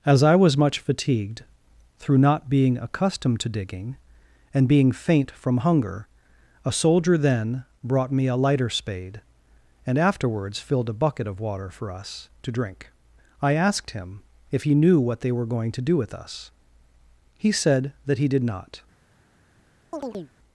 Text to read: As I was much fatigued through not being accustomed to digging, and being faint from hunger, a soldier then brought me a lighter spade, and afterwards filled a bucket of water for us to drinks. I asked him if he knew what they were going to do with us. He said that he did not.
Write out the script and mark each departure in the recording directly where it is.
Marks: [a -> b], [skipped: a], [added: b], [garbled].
As I was much fatigued through not being accustomed to digging, and being faint from hunger, a soldier then brought me a lighter spade, and afterwards filled a bucket of water for us to [drinks. -> drink] I asked him if he knew what they were going to do with us. He said that he did not.